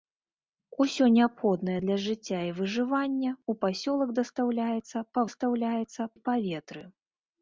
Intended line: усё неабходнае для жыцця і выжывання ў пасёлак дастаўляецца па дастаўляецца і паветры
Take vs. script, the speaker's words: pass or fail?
pass